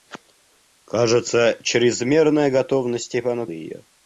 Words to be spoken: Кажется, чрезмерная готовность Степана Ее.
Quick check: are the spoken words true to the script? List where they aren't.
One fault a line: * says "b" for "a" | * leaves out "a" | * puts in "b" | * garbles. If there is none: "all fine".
all fine